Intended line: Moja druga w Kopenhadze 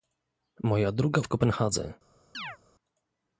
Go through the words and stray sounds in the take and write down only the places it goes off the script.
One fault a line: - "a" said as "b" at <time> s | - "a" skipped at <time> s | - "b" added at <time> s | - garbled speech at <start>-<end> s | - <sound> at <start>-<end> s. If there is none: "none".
- chirp at 2.3-2.6 s